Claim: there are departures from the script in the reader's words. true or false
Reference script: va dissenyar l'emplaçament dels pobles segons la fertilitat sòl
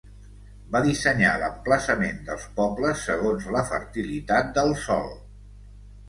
true